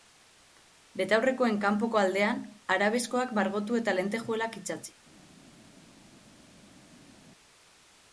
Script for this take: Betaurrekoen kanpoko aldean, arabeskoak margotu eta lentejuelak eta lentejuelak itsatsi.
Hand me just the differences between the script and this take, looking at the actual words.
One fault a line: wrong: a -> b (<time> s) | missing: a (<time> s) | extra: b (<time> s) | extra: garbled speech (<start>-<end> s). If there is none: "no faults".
missing: eta lentejuelak (4.6 s)